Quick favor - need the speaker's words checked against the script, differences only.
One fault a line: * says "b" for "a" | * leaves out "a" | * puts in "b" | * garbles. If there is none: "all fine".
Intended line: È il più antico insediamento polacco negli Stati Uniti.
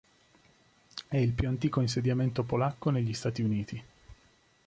all fine